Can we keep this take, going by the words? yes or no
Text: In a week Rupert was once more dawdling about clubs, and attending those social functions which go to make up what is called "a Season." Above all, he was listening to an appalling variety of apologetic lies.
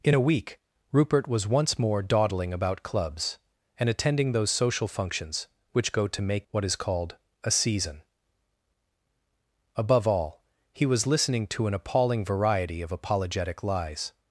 no